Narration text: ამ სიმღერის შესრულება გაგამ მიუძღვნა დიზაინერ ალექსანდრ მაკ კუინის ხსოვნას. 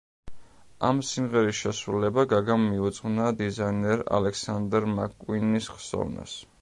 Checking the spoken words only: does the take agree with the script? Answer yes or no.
yes